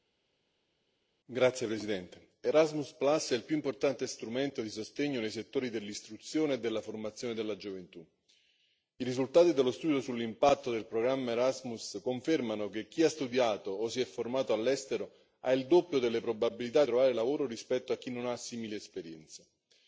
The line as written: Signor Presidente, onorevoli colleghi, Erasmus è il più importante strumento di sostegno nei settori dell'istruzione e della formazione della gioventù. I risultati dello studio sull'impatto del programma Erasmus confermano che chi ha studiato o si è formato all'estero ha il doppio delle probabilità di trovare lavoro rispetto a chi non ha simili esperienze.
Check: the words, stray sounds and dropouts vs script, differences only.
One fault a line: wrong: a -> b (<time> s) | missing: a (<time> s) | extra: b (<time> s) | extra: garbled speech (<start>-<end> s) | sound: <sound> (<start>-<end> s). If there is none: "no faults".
missing: di (16.8 s)